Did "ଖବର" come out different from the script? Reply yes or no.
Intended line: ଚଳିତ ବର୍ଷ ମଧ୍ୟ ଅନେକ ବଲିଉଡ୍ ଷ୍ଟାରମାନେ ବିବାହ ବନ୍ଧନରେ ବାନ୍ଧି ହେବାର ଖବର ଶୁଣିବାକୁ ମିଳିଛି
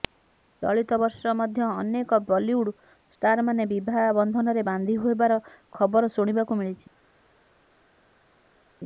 no